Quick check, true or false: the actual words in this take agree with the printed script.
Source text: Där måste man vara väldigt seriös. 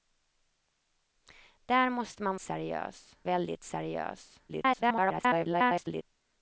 false